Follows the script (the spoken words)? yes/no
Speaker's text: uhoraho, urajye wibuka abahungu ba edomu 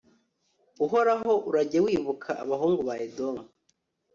yes